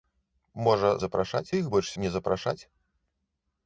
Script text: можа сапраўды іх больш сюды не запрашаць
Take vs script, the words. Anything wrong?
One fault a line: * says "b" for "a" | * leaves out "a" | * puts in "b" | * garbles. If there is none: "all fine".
* says "запрашаць" for "сапраўды"
* leaves out "сюды"